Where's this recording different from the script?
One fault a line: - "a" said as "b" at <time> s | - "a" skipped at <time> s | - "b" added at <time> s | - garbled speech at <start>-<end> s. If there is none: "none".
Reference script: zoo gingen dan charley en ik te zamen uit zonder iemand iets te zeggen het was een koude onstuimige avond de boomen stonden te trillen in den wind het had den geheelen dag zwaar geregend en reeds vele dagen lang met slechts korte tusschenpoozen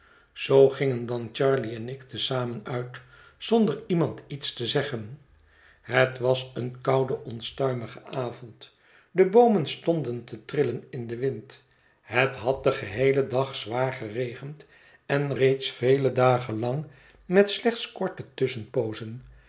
none